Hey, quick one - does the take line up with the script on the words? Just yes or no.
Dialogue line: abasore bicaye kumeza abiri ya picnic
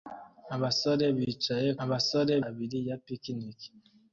no